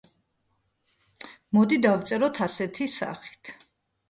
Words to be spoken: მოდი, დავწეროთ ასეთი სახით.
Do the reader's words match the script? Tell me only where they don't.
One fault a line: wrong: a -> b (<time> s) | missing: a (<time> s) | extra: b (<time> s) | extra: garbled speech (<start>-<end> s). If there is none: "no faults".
no faults